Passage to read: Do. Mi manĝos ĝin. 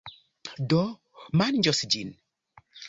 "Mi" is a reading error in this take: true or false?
true